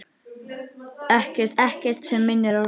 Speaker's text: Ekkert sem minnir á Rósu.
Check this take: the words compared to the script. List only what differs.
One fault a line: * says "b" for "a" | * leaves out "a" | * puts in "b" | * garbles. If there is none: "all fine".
* puts in "ekkert"